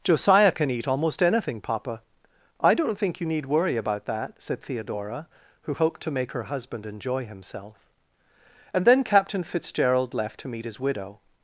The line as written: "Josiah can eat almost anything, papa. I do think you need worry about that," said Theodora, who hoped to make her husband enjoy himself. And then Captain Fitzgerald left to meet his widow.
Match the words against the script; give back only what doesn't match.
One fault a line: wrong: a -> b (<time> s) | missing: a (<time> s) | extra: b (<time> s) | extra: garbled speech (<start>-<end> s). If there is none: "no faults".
wrong: do -> don't (2.7 s)